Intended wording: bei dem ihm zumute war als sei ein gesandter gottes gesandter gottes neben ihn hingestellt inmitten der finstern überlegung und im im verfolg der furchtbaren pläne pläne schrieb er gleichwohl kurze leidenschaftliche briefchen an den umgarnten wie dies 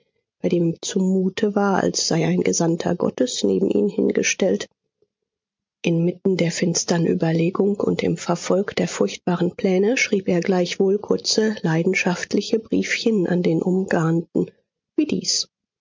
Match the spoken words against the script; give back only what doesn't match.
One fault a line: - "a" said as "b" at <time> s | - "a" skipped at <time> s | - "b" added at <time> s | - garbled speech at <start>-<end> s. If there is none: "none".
- "gesandter gottes" skipped at 3.4 s
- "im" skipped at 8.2 s
- "pläne" skipped at 10.0 s